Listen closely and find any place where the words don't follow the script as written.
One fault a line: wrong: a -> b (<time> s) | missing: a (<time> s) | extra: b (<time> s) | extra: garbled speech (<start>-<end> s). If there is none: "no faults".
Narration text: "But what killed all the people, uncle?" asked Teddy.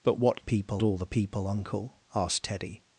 wrong: killed -> people (0.4 s)